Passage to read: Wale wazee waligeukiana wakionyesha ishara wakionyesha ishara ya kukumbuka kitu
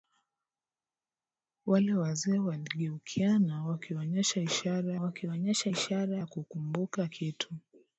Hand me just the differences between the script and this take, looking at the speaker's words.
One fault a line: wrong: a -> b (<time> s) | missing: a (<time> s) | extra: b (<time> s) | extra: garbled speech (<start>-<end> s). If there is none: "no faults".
no faults